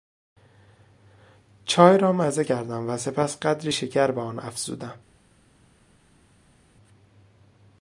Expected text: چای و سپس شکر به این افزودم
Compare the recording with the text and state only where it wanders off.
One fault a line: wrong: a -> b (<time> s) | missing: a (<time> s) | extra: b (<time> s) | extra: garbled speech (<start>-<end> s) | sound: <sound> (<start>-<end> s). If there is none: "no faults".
extra: را مزه کردم (2.0 s)
extra: قدری (3.4 s)
wrong: این -> آن (4.2 s)